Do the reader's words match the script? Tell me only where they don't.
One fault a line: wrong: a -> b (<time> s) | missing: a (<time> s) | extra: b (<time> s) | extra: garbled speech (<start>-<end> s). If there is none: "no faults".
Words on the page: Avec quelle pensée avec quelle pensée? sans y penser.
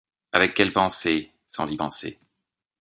missing: avec quelle pensée (1.3 s)